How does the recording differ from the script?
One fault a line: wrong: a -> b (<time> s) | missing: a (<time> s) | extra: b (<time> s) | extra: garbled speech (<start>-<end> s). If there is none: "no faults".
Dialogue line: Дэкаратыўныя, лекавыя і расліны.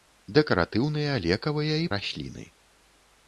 no faults